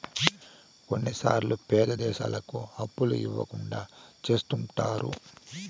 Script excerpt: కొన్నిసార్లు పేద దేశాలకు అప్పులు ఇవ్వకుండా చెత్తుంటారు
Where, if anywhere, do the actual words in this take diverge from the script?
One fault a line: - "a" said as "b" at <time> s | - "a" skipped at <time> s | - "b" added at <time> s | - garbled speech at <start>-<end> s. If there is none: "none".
none